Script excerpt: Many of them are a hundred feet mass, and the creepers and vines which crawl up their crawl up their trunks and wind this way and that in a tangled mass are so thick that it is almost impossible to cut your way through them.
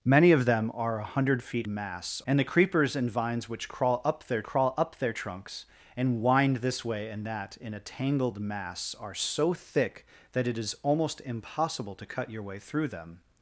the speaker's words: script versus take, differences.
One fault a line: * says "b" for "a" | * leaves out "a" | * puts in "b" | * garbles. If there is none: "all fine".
all fine